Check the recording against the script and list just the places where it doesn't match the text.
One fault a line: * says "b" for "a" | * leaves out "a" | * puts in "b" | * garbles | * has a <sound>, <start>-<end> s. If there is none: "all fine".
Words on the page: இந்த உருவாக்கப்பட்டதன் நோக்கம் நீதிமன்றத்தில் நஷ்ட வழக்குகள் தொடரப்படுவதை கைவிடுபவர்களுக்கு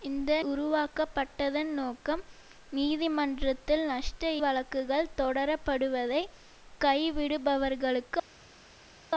all fine